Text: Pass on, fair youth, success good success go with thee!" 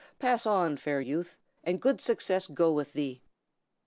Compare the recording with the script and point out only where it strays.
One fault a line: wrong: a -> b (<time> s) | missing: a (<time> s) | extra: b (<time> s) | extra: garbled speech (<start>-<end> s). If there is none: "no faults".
wrong: success -> and (1.6 s)